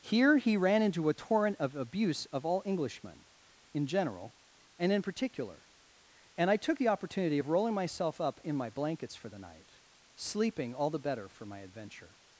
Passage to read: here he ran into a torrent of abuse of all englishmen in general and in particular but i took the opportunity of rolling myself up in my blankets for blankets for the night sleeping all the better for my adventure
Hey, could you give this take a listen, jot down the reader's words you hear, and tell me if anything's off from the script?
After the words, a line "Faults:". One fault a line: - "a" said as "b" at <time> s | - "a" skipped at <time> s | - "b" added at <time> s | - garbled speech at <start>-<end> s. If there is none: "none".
here he ran into a torrent of abuse of all englishmen in general and in particular and i took the opportunity of rolling myself up in my blankets for the night sleeping all the better for my adventure
Faults:
- "but" said as "and" at 6.3 s
- "blankets for" skipped at 9.3 s